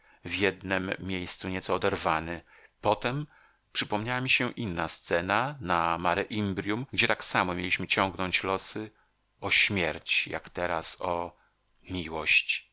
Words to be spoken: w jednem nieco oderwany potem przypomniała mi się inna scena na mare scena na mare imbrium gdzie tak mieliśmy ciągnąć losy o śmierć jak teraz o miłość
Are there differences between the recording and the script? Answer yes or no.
yes